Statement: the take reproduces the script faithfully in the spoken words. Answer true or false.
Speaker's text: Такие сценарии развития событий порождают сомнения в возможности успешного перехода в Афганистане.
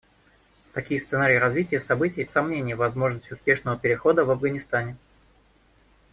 false